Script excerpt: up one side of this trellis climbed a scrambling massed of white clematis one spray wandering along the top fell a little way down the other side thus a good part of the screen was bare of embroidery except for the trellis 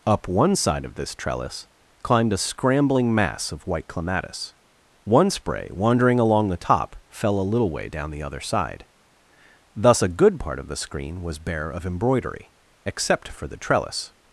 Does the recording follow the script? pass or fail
fail